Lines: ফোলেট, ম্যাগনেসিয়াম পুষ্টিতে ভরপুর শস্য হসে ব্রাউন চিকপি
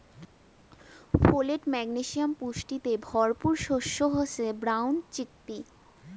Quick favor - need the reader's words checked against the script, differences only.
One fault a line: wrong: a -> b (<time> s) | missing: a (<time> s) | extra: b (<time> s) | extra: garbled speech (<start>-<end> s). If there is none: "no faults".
no faults